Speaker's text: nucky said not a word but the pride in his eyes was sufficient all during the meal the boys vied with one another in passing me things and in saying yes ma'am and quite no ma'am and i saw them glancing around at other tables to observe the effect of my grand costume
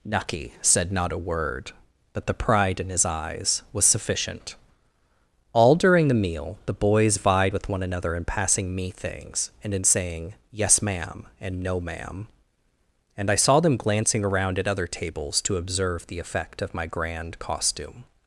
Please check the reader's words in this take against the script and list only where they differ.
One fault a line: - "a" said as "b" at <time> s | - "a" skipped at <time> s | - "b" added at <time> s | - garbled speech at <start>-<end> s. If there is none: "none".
- "quite" skipped at 11.6 s